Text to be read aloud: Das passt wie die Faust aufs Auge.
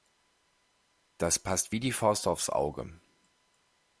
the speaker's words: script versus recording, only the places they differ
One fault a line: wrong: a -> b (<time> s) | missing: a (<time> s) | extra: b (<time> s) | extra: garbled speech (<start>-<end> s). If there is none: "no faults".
no faults